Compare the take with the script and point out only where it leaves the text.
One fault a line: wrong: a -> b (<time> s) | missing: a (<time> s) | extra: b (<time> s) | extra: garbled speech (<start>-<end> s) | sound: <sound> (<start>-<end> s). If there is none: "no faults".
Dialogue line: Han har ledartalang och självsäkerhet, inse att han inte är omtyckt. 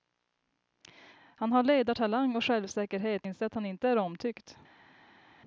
no faults